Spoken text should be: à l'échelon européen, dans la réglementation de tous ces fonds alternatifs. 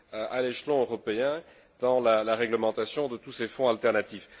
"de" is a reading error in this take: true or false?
false